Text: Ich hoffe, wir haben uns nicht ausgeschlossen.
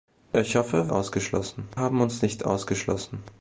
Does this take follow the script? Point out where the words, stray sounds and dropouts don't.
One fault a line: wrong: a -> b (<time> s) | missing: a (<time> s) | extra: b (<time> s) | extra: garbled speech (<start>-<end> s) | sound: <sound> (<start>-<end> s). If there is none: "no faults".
wrong: wir -> ausgeschlossen (0.9 s)